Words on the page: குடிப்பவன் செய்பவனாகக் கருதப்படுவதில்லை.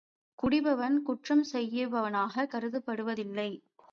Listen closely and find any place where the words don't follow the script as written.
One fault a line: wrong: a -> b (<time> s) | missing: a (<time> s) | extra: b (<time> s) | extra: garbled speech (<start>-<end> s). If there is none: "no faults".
extra: குற்றம் (1.0 s)